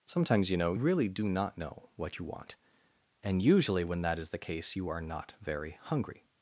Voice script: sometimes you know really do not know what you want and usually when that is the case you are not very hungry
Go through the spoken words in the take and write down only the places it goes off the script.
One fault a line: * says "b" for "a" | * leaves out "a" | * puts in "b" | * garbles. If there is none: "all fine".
all fine